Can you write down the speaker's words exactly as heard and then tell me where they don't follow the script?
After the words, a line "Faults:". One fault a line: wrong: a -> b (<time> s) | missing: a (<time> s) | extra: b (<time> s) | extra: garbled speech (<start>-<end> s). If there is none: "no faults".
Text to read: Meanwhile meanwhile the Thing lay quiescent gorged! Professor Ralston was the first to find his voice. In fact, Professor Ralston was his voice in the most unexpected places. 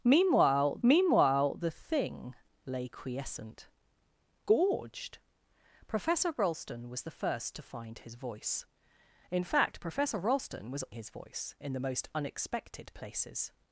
Meanwhile meanwhile the Thing lay quiescent gorged! Professor Ralston was the first to find his voice. In fact, Professor Ralston was his voice in the most unexpected places.
Faults:
no faults